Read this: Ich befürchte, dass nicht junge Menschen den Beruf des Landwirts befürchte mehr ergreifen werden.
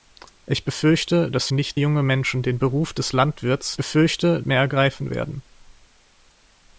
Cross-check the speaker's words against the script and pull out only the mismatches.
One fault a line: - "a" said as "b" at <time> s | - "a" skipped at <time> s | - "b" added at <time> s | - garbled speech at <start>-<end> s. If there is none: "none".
none